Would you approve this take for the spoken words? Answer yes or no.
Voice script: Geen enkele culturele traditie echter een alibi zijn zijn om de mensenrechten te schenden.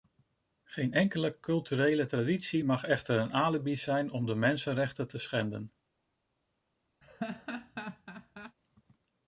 no